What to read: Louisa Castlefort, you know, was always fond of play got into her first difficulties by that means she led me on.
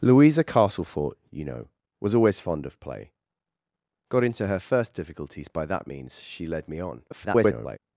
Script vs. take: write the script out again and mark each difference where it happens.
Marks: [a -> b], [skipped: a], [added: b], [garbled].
Louisa Castlefort, you know, was always fond of play got into her first difficulties by that means she led me on. [garbled]